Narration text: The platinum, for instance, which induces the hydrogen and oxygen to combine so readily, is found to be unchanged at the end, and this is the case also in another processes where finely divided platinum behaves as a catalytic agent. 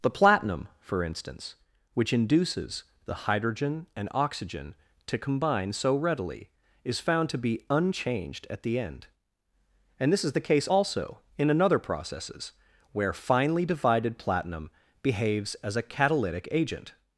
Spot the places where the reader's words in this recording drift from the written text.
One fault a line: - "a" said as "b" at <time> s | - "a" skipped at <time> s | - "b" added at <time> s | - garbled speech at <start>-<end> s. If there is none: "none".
none